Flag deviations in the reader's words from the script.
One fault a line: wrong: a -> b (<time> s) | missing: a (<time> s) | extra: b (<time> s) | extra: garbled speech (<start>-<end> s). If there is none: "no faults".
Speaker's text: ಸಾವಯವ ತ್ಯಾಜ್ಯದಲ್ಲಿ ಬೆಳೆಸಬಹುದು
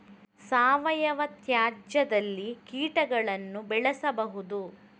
extra: ಕೀಟಗಳನ್ನು (2.6 s)